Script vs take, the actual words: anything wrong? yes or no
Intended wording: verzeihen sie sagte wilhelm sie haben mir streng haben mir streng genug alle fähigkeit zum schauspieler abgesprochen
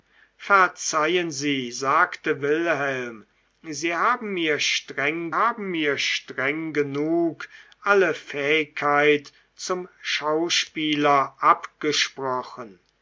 no